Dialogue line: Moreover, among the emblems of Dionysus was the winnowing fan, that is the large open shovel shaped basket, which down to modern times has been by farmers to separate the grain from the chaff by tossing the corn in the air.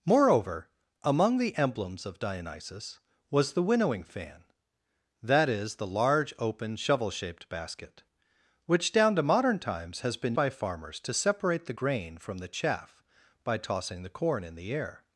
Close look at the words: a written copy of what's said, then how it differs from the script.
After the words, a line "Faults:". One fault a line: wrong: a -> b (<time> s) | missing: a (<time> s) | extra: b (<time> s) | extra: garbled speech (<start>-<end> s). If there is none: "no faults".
Moreover, among the emblems of Dionysus was the winnowing fan, that is the large open shovel shaped basket, which down to modern times has been by farmers to separate the grain from the chaff by tossing the corn in the air.
Faults:
no faults